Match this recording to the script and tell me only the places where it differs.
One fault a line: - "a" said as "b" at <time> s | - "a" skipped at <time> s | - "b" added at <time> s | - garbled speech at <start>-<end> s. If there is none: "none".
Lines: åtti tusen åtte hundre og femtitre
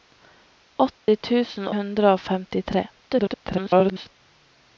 - "åtte" skipped at 1.7 s
- garbled speech at 2.9-4.2 s